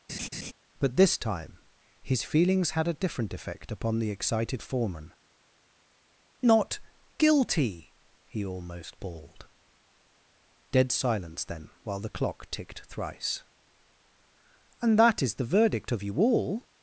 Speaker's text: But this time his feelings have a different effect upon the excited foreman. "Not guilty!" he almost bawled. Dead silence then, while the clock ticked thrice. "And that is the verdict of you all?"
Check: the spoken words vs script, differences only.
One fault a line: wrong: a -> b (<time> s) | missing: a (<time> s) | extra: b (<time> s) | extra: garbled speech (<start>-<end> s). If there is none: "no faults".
wrong: have -> had (2.7 s)